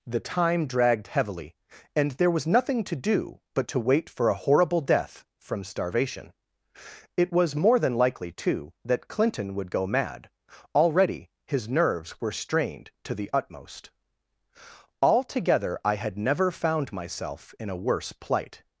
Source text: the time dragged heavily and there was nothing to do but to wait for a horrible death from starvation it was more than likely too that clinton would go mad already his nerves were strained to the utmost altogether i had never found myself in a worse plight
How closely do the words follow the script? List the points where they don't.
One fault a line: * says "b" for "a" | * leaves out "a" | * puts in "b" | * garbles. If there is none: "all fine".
all fine